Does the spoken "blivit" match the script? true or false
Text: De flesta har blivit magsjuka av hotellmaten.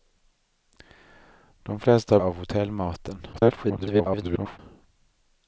false